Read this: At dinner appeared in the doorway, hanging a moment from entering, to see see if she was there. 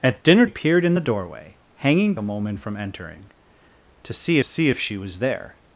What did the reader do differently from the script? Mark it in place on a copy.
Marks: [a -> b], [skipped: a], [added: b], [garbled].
At dinner appeared in the doorway, hanging a moment from entering, to see see if she was there.